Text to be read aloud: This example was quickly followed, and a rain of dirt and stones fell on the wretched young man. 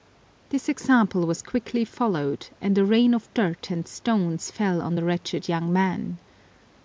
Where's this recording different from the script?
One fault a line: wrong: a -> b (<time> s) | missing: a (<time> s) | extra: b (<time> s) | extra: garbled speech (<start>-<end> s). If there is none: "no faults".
no faults